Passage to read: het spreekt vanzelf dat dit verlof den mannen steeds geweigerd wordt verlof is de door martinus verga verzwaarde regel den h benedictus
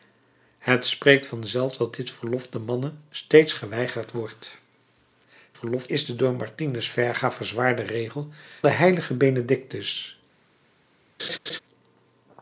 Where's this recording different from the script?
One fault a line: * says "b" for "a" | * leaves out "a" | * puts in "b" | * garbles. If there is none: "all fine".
all fine